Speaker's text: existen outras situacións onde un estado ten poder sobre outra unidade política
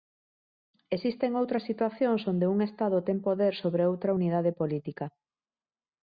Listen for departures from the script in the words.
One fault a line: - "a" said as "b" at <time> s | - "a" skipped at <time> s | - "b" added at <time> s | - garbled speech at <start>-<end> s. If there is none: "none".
none